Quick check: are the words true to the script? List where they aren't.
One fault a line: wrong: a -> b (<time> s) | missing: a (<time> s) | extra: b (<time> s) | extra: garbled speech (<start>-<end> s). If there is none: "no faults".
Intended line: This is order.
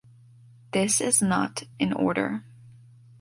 extra: not in (1.2 s)